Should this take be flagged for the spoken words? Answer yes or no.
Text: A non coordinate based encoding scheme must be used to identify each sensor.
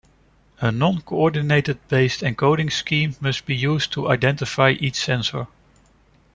no